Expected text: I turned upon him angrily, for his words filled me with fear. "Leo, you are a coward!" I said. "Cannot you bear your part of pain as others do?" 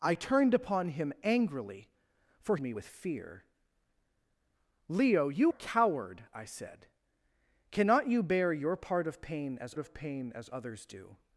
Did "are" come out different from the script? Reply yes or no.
yes